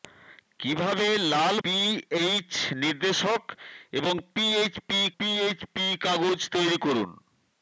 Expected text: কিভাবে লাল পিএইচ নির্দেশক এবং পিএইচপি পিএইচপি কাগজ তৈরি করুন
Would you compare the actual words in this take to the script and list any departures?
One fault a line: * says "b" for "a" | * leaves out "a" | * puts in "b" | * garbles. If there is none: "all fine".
all fine